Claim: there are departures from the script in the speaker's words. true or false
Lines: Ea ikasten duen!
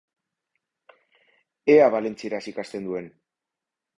true